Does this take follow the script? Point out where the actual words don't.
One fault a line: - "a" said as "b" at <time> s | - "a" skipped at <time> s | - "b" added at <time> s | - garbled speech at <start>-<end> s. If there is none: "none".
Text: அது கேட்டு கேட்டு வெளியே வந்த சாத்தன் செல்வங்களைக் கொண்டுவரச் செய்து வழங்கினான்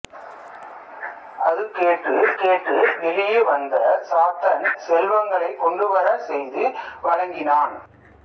none